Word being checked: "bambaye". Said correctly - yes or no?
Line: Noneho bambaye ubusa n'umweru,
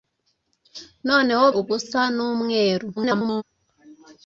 no